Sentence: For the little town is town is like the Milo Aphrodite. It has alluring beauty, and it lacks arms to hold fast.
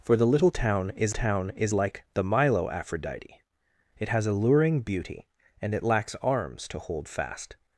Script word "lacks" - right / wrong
right